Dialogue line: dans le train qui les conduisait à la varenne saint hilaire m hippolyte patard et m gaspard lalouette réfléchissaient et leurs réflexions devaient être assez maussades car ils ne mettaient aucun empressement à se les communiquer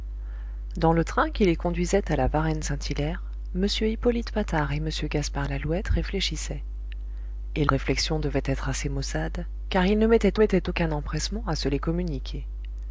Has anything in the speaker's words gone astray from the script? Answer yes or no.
yes